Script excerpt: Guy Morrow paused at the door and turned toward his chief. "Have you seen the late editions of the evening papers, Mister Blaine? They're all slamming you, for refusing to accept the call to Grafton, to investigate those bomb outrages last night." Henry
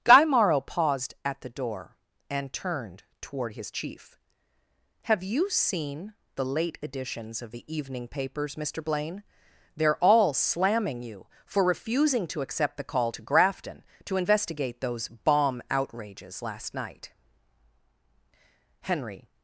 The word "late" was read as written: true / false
true